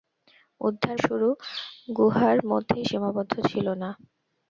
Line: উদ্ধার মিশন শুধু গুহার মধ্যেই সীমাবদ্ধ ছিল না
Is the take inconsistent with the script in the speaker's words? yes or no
yes